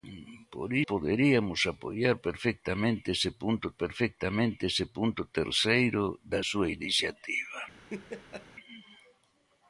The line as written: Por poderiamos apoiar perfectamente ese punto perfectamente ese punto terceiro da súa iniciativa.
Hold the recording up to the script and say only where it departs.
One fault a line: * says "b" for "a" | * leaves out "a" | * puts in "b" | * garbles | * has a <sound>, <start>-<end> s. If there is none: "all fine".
* has a laugh, 7.9-8.5 s